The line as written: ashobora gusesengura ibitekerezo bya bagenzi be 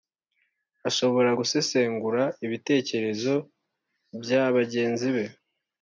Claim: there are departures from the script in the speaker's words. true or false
false